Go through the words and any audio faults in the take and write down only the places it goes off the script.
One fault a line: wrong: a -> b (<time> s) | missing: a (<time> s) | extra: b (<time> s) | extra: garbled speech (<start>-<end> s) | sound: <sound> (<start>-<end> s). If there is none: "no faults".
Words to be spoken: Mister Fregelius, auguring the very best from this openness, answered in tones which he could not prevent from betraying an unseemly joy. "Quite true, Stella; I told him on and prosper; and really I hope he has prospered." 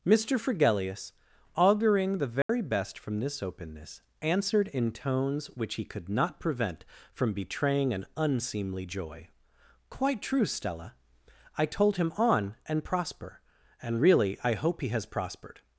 sound: dropout (2.4-2.5 s)